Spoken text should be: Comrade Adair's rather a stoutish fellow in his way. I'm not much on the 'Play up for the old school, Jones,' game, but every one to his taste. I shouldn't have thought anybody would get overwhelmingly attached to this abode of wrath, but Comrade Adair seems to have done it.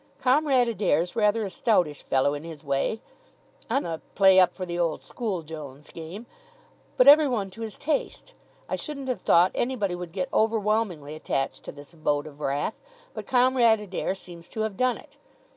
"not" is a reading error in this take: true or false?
true